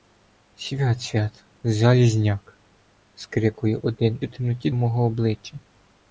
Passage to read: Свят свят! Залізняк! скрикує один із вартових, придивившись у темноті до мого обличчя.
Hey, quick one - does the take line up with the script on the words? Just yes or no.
no